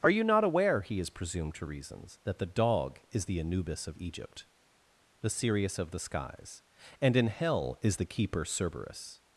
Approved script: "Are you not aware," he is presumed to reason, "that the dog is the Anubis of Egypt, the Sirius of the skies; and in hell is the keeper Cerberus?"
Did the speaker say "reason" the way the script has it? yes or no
no